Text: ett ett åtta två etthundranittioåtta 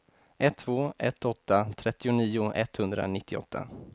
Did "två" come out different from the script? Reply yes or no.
yes